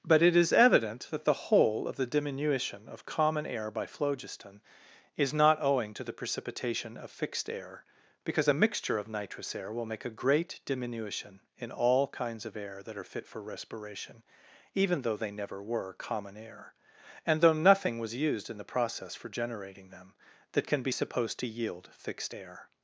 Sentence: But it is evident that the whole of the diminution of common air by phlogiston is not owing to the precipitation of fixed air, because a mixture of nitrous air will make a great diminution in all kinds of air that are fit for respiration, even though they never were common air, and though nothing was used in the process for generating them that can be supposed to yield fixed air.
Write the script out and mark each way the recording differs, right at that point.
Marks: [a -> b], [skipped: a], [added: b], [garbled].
But it is evident that the whole of the diminution of common air by phlogiston is not owing to the precipitation of fixed air, because a mixture of nitrous air will make a great diminution in all kinds of air that are fit for respiration, even though they never were common air, and though nothing was used in the process for generating them that can be supposed to yield fixed air.